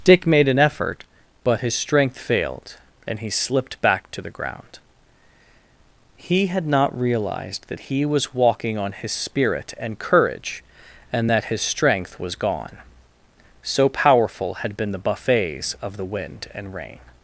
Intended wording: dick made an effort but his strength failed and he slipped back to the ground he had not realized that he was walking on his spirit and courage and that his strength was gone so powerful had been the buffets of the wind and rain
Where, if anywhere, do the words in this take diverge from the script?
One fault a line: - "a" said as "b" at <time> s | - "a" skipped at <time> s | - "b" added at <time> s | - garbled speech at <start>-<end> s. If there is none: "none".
none